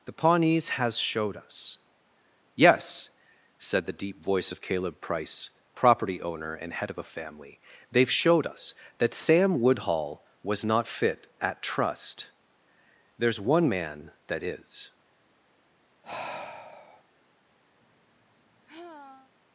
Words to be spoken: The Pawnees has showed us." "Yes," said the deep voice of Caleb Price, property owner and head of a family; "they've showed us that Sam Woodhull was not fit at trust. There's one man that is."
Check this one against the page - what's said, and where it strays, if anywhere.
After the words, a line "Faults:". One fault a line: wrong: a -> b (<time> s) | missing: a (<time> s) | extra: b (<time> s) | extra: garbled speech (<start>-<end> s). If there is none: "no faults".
The Pawnees has showed us." "Yes," said the deep voice of Caleb Price, property owner and head of a family; "they've showed us that Sam Woodhull was not fit at trust. There's one man that is."
Faults:
no faults